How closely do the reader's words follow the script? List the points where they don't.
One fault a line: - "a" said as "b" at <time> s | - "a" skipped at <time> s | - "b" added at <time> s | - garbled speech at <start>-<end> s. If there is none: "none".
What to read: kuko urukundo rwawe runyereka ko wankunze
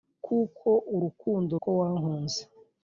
- "rwawe runyereka" skipped at 1.5 s